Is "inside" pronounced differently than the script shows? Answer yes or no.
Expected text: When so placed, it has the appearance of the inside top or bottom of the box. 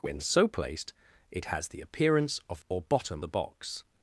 yes